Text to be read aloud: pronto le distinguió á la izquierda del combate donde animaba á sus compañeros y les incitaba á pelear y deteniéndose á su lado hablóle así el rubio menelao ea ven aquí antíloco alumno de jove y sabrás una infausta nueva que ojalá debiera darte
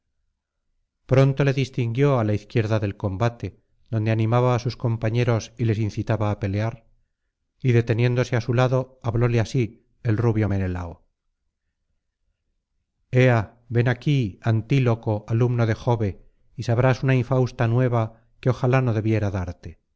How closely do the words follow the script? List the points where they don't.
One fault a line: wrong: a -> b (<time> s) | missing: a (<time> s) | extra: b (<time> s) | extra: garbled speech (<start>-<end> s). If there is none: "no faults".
extra: no (18.8 s)